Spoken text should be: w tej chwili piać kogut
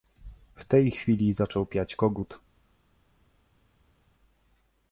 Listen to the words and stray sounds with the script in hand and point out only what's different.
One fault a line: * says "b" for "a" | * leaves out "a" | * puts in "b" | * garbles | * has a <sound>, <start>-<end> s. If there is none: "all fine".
* puts in "zaczął"